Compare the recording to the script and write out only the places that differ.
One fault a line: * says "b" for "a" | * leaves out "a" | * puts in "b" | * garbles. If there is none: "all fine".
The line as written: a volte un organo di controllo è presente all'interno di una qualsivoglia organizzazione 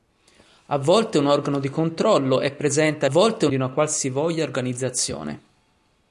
* says "volte" for "all'interno"